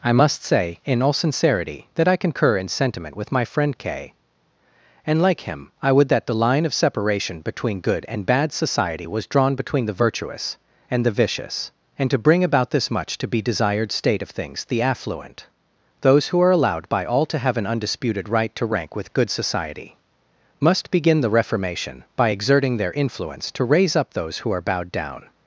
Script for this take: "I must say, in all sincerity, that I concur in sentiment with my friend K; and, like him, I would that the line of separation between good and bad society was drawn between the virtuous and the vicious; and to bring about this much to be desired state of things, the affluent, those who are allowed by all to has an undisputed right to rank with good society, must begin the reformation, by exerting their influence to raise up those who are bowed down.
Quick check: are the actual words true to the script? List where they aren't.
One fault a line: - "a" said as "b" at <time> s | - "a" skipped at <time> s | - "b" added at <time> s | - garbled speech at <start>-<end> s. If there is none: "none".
- "has" said as "have" at 17.4 s